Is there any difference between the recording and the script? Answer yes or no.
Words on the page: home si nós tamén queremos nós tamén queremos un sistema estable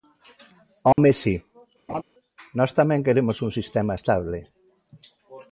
yes